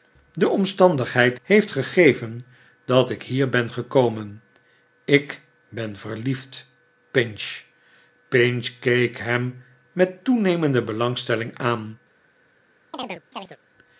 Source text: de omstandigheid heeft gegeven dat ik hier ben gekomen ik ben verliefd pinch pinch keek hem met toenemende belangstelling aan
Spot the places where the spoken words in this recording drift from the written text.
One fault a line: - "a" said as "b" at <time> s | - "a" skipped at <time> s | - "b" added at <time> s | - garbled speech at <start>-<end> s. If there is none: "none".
none